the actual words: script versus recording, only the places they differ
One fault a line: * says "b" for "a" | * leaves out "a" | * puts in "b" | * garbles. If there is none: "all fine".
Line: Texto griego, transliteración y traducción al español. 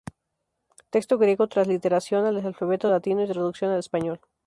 * puts in "al alfabeto latino"